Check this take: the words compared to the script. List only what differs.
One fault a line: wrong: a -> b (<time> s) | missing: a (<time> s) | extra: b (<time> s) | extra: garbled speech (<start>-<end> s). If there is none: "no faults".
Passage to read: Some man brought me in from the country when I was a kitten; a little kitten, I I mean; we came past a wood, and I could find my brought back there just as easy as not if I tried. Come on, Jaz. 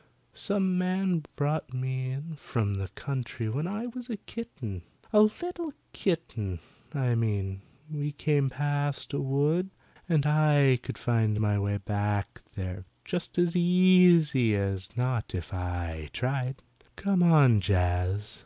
missing: I (7.1 s)
wrong: brought -> way (11.6 s)